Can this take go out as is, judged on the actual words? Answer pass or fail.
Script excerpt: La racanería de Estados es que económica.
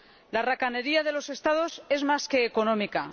fail